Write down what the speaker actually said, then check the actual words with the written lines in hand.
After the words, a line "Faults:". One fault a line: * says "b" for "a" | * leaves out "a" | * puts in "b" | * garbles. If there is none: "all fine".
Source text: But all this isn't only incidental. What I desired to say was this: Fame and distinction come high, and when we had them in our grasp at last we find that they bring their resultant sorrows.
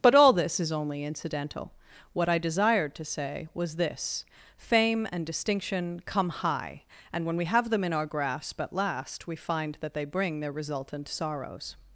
But all this is only incidental. What I desired to say was this: Fame and distinction come high, and when we have them in our grasp at last we find that they bring their resultant sorrows.
Faults:
* says "is" for "isn't"
* says "have" for "had"